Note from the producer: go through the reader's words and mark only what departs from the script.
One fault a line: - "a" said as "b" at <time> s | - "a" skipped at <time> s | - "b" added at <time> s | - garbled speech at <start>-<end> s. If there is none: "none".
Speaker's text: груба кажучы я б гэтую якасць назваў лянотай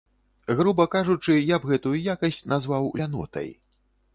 none